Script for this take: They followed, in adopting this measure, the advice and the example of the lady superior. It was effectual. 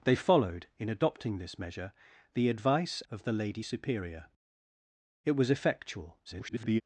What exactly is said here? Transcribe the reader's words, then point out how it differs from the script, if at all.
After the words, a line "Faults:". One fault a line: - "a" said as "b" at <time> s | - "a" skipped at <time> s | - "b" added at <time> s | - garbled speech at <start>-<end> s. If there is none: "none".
They followed, in adopting this measure, the advice of the lady superior. It was effectual. [garbled]
Faults:
- "and the example" skipped at 3.0 s
- garbled speech at 6.3-6.8 s